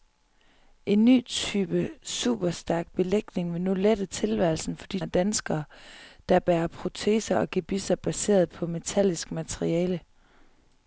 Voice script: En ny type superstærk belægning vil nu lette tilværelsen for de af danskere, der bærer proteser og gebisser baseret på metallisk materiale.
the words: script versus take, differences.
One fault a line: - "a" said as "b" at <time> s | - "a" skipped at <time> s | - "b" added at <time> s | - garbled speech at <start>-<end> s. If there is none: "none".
none